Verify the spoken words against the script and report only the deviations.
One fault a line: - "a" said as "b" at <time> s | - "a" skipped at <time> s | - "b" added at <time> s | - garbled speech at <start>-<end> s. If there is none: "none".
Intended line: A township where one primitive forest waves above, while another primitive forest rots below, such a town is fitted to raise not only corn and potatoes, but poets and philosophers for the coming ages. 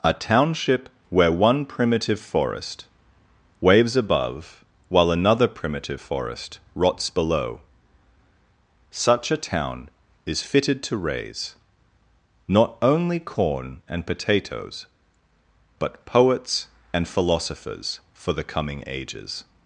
none